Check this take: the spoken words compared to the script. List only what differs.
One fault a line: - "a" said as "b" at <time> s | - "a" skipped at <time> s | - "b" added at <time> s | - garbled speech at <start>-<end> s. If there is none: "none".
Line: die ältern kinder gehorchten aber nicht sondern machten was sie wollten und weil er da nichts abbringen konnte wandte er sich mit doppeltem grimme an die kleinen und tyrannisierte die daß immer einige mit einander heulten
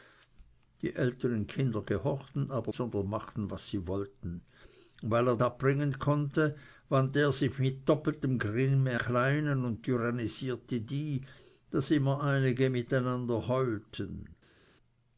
- "nicht" skipped at 2.7 s
- "da nichts" skipped at 5.4 s
- "an die" skipped at 9.0 s